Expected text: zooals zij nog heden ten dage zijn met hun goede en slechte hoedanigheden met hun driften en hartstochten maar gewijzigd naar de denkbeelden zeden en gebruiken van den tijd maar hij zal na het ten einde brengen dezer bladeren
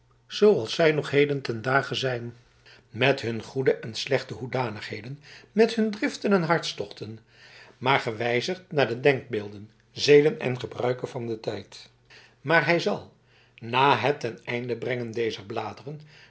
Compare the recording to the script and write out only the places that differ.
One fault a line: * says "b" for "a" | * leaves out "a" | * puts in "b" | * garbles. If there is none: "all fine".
all fine